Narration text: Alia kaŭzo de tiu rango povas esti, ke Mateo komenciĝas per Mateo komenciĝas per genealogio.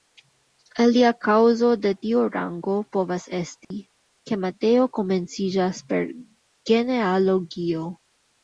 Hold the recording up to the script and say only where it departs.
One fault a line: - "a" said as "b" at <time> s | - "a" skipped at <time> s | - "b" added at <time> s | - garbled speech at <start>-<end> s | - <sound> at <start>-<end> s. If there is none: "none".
- dropout at 3.6-3.7 s
- "Mateo komenciĝas per" skipped at 6.1 s